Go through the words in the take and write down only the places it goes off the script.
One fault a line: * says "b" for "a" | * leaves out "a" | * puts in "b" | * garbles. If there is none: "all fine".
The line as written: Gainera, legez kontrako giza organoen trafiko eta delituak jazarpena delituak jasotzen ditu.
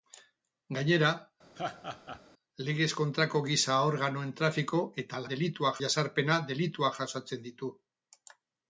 all fine